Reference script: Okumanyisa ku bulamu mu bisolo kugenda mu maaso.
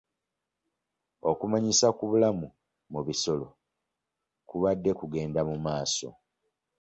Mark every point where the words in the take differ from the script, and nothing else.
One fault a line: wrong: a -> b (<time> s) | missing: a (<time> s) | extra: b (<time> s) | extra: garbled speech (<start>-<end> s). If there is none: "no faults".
extra: kubadde (4.5 s)